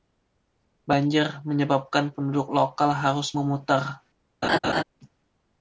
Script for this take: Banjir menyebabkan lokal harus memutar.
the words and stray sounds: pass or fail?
fail